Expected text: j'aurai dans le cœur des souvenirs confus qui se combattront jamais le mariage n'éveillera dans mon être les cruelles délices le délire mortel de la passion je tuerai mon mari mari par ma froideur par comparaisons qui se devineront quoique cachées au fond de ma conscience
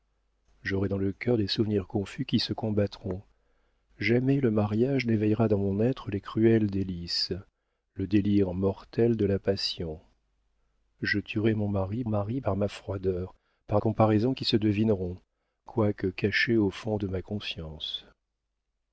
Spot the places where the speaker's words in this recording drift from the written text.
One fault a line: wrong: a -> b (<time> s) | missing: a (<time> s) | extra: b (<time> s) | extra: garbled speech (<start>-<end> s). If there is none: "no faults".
no faults